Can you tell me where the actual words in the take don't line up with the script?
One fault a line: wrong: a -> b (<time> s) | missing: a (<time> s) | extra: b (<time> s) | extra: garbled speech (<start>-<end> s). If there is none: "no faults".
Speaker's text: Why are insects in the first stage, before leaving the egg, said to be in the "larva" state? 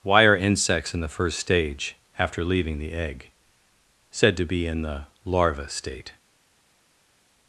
wrong: before -> after (2.2 s)